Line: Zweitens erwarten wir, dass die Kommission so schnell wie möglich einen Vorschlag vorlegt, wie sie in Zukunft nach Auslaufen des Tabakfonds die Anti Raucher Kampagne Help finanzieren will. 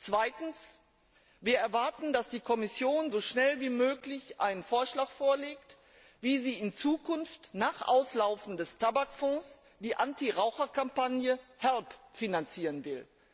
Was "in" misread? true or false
false